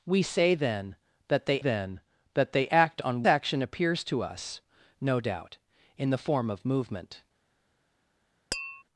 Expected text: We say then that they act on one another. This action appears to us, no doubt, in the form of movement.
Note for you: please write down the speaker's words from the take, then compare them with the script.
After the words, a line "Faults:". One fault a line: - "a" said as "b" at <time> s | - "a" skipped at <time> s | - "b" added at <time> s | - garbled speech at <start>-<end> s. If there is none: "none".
We say then that they then that they act on action appears to us, no doubt, in the form of movement.
Faults:
- "act on one another This" said as "then that they act on" at 1.6 s